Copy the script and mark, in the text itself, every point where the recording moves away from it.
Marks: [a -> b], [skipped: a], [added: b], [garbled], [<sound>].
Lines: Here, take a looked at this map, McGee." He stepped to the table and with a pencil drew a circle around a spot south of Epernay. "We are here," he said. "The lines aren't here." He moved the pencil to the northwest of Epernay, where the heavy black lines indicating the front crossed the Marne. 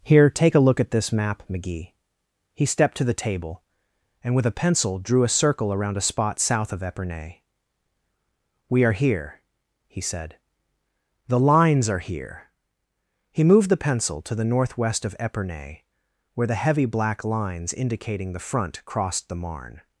Here, take a [looked -> look] at this map, McGee." He stepped to the table and with a pencil drew a circle around a spot south of Epernay. "We are here," he said. "The lines [aren't -> are] here." He moved the pencil to the northwest of Epernay, where the heavy black lines indicating the front crossed the Marne.